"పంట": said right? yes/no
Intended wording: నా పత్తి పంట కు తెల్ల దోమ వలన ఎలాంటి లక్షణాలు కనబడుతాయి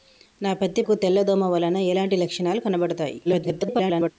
no